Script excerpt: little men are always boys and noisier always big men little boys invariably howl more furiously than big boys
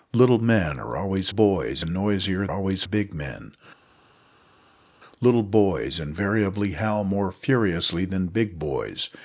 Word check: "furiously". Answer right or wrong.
right